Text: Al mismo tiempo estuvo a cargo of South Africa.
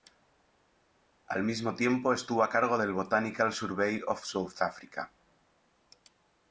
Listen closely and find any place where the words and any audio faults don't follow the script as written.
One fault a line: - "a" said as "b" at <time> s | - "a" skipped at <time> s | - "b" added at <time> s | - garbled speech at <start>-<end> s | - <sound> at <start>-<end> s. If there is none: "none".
- "del Botanical Survey" added at 2.8 s